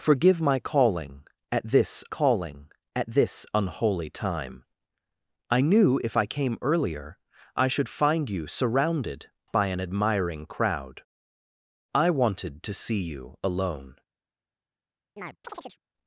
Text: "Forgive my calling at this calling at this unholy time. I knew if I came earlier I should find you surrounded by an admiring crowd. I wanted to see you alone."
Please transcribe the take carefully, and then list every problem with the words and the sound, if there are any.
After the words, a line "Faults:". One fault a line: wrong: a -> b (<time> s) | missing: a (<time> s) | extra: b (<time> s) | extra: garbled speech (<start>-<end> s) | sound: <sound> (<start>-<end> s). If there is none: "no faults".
"Forgive my calling at this calling at this unholy time. I knew if I came earlier I should find you surrounded by an admiring crowd. I wanted to see you alone."
Faults:
sound: chirp (15.2-15.8 s)